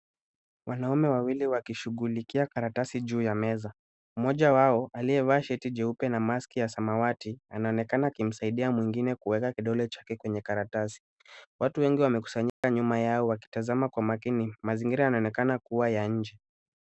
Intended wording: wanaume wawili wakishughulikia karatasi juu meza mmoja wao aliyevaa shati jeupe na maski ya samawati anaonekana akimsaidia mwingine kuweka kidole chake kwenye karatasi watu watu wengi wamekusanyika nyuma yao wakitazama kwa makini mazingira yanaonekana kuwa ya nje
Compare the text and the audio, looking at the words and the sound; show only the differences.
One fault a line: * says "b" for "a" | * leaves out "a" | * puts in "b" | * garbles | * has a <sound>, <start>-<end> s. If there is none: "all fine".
* puts in "ya"
* leaves out "watu"
* has a dropout, 12.5-12.6 s